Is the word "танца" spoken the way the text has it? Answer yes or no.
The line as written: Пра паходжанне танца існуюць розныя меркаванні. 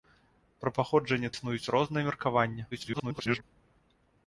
no